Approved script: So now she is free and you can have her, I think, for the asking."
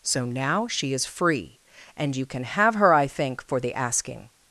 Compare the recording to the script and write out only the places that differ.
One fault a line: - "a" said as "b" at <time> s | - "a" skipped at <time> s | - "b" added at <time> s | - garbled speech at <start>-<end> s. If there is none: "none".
none